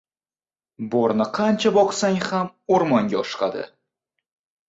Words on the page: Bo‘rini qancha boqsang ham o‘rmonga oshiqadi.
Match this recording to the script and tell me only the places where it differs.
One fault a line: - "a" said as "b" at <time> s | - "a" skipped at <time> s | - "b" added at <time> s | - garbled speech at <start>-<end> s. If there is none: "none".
none